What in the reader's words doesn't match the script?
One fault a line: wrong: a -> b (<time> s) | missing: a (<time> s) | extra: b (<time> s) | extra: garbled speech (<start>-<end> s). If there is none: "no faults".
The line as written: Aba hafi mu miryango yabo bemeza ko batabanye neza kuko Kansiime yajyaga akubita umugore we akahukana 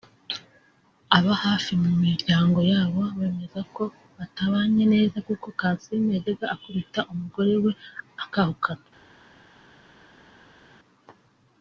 no faults